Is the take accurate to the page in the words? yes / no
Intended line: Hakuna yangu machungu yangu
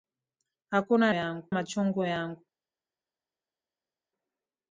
yes